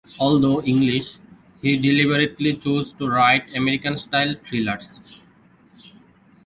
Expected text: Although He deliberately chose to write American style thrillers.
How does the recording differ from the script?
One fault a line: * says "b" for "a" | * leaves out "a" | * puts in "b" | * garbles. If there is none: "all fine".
* puts in "English"